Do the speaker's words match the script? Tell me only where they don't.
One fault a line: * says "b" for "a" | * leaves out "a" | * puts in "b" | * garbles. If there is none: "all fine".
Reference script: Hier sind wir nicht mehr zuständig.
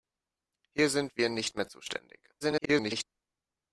* garbles